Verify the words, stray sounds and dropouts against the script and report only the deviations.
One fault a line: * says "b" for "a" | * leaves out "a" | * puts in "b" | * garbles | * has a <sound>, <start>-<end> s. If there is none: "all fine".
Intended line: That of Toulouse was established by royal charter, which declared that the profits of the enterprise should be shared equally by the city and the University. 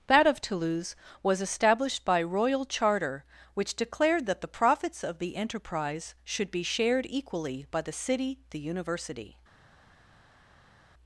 * leaves out "and"